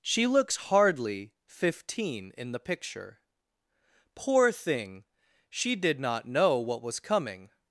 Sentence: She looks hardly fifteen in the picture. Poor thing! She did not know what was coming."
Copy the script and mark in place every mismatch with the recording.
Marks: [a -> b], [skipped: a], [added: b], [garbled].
She looks hardly fifteen in the picture. Poor thing! She did not know what was coming."